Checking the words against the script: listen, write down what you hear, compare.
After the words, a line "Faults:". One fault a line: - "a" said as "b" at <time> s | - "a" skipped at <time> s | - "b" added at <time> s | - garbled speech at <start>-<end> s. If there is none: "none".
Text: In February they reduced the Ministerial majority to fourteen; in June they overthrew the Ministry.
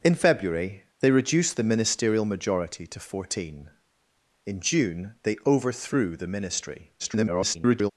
In February they reduced the Ministerial majority to fourteen; in June they overthrew the Ministry. [garbled]
Faults:
- garbled speech at 7.0-7.9 s